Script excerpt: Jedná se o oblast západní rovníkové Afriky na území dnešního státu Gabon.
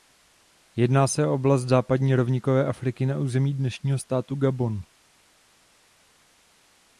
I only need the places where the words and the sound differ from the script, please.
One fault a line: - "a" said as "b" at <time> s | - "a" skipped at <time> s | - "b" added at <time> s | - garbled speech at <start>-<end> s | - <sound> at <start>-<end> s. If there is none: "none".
none